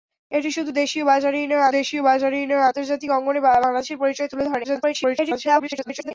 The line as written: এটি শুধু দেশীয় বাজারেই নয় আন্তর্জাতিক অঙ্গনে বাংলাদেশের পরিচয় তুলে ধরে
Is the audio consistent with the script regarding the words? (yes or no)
no